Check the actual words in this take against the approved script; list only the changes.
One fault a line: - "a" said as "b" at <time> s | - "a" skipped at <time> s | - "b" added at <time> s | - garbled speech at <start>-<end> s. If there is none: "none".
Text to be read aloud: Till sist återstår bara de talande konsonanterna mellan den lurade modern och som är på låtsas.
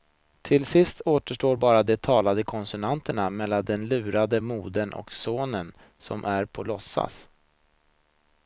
- "sonen" added at 5.1 s